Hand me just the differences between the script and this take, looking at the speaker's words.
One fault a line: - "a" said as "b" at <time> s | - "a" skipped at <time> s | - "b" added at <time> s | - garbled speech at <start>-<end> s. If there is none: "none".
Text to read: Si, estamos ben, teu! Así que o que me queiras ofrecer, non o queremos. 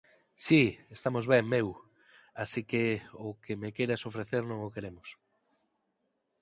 - "teu" said as "meu" at 1.5 s